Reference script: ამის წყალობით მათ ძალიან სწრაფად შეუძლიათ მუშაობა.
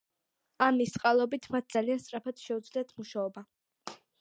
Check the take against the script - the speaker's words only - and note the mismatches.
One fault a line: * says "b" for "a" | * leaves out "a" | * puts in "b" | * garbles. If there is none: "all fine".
all fine